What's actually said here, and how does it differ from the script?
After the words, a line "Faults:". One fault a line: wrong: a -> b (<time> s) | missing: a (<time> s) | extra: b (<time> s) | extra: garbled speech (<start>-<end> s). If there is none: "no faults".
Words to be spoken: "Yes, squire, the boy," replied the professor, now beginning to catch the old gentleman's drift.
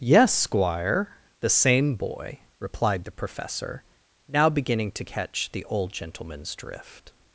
"Yes, squire, the same boy," replied the professor, now beginning to catch the old gentleman's drift.
Faults:
extra: same (1.5 s)